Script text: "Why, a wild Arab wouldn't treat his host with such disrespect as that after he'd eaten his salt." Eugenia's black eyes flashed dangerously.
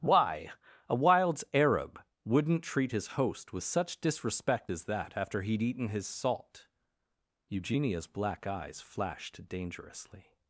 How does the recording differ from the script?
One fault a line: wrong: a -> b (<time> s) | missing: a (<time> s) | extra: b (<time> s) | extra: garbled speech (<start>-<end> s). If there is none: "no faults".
wrong: wild -> wilds (1.0 s)